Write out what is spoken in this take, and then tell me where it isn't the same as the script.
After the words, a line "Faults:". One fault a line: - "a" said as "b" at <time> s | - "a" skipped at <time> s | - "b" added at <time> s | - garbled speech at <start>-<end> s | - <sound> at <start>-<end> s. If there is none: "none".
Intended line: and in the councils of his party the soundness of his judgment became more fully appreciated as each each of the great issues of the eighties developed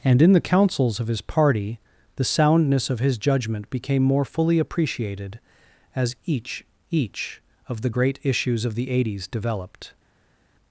and in the councils of his party the soundness of his judgment became more fully appreciated as each each of the great issues of the eighties developed
Faults:
none